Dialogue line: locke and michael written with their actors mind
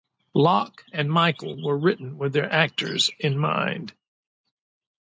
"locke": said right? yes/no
yes